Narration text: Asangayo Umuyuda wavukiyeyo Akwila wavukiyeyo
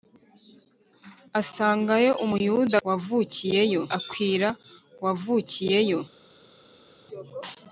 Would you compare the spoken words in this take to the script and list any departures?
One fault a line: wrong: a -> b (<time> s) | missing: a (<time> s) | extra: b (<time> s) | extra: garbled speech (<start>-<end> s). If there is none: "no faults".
no faults